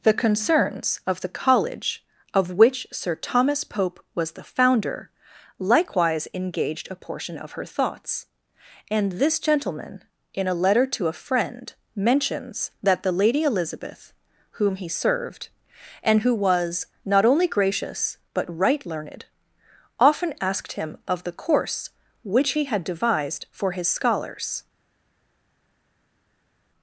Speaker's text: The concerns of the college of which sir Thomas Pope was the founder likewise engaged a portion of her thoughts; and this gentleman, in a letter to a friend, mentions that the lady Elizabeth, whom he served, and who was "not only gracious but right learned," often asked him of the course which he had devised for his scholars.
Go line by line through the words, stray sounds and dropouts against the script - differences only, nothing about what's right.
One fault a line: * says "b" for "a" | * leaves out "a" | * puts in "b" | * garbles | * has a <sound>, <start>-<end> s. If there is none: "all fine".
all fine